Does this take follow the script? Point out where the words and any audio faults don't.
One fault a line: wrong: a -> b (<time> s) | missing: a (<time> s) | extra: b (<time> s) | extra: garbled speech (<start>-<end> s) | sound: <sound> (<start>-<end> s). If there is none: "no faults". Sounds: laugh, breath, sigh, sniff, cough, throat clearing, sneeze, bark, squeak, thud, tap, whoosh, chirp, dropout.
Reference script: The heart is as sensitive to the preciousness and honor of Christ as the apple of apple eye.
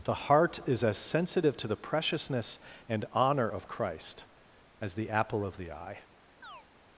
wrong: apple -> the (5.6 s)
sound: chirp (6.4-6.7 s)